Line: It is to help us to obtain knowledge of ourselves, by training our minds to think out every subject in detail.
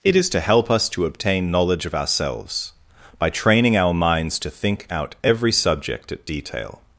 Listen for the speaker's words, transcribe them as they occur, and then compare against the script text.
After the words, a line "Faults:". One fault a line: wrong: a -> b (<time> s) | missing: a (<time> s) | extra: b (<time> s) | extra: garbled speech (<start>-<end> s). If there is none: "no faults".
It is to help us to obtain knowledge of ourselves, by training our minds to think out every subject at detail.
Faults:
wrong: in -> at (6.1 s)